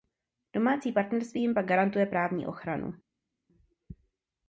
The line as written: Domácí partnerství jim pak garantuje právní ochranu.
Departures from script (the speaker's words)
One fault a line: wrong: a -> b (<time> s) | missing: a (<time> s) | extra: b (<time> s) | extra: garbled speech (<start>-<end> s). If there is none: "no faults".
no faults